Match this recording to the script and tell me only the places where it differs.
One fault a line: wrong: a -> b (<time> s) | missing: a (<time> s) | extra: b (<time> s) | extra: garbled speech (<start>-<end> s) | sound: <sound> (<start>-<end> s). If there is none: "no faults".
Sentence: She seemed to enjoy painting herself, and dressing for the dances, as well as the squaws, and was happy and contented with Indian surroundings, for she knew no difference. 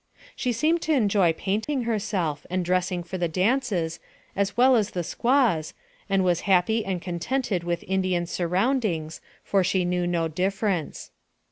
sound: dropout (1.6-1.7 s)